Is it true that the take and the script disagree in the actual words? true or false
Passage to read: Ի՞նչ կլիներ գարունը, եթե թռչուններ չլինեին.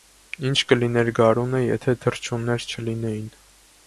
false